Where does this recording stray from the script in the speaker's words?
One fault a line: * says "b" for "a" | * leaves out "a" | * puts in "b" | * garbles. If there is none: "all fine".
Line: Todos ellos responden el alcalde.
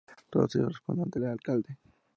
* puts in "ante"